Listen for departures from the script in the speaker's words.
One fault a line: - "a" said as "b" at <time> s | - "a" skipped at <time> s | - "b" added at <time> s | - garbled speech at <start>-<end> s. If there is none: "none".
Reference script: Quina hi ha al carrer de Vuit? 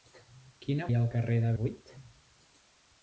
none